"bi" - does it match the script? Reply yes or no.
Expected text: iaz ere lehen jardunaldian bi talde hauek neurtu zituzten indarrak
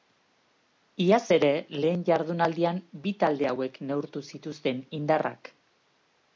yes